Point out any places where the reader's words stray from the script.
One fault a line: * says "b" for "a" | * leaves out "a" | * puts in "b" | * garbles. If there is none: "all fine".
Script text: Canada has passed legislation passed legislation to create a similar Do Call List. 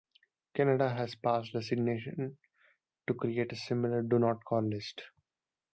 * leaves out "passed legislation"
* puts in "Not"